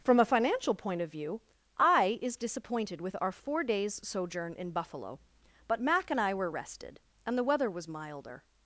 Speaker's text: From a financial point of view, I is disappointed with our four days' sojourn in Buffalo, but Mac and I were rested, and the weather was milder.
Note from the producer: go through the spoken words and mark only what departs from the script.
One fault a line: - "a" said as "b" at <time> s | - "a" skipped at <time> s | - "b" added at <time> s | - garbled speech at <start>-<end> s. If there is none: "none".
none